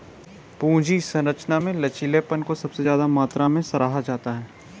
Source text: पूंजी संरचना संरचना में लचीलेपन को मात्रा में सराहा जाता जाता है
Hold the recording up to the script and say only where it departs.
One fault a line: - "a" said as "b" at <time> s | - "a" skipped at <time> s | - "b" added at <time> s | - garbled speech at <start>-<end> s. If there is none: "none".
- "संरचना" skipped at 1.6 s
- "सबसे ज्यादा" added at 2.5 s
- "जाता" skipped at 4.3 s